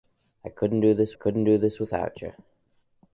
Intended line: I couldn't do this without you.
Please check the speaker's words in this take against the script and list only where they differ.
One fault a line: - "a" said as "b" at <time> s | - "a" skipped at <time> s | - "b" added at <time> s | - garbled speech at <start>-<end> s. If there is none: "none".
- "couldn't do this" added at 1.1 s